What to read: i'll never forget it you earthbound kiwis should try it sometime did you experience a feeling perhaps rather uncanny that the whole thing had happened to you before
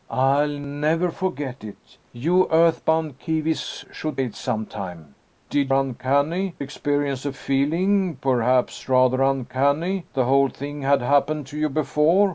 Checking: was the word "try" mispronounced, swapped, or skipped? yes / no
yes